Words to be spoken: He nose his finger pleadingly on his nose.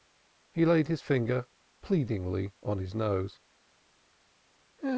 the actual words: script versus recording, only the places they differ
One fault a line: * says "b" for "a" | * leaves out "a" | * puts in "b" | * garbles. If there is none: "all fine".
* says "laid" for "nose"